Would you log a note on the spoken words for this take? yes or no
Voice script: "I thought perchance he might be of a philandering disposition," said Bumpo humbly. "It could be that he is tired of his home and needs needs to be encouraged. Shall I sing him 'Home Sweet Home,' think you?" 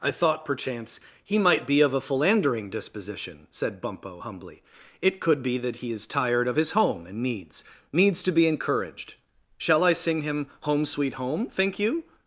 no